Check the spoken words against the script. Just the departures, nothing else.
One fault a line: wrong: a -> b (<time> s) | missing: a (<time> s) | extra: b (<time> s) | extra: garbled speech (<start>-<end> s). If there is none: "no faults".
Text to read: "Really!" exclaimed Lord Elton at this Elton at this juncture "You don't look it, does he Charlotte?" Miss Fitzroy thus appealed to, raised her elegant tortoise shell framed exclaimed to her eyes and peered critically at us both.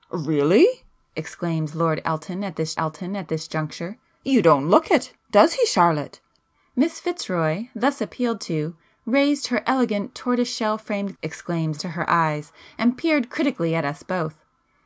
no faults